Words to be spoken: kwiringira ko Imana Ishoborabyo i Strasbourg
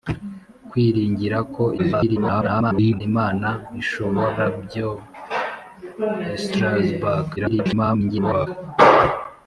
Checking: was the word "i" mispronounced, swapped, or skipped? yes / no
no